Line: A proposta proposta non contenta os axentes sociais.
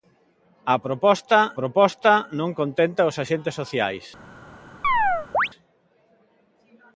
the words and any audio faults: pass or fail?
fail